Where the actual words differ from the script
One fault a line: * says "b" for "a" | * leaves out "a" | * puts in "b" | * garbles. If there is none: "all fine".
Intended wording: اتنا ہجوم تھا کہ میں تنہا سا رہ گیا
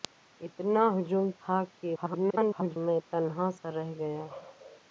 * garbles